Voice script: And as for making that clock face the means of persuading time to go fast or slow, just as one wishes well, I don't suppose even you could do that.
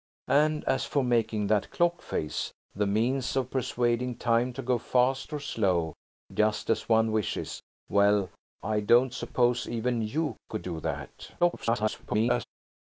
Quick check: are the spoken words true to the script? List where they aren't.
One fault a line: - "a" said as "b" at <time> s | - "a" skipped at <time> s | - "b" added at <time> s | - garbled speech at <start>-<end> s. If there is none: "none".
- garbled speech at 11.4-12.4 s